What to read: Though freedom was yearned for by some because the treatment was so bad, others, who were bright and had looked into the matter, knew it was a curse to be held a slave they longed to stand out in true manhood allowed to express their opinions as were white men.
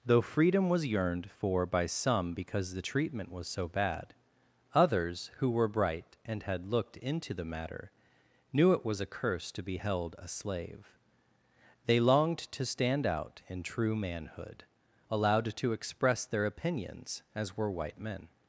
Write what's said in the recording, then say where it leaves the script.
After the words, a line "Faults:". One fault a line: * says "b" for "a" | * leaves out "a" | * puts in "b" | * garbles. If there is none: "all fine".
Though freedom was yearned for by some because the treatment was so bad, others, who were bright and had looked into the matter, knew it was a curse to be held a slave they longed to stand out in true manhood allowed to express their opinions as were white men.
Faults:
all fine